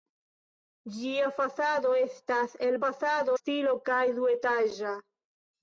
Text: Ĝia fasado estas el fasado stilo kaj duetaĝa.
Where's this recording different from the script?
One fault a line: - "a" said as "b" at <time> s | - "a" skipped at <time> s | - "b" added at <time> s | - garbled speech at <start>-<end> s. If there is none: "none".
none